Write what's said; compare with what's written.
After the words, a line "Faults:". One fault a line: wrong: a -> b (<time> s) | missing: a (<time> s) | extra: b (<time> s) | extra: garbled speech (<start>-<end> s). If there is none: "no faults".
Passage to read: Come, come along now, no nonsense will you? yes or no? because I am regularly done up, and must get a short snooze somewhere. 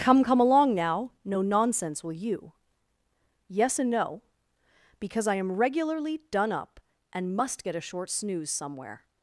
Come, come along now, no nonsense will you? yes and no? because I am regularly done up, and must get a short snooze somewhere.
Faults:
wrong: or -> and (3.8 s)